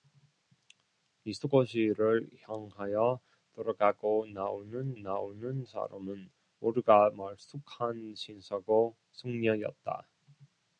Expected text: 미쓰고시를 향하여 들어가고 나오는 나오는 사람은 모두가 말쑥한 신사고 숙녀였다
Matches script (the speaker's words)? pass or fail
pass